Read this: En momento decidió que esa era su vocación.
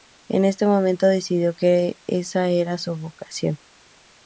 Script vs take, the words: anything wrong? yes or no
yes